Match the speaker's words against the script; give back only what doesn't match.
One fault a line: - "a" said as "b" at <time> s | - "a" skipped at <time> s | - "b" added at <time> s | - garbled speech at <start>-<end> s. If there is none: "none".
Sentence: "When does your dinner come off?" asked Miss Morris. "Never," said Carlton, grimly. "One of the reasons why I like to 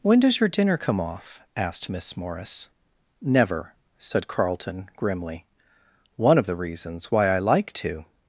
none